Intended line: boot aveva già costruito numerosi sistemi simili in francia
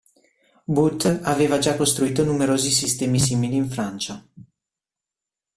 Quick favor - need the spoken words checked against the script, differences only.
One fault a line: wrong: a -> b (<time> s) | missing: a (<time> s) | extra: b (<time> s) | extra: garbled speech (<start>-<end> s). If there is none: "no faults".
no faults